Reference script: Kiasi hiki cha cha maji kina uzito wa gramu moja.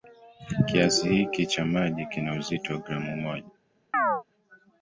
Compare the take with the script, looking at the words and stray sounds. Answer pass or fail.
fail